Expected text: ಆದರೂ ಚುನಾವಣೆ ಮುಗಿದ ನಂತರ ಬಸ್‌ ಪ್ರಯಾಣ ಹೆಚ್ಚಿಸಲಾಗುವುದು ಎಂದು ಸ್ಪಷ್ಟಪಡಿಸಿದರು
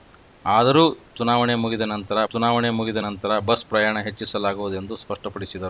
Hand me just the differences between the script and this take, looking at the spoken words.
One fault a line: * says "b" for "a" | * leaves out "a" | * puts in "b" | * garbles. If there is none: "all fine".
* puts in "ಚುನಾವಣೆ ಮುಗಿದ ನಂತರ"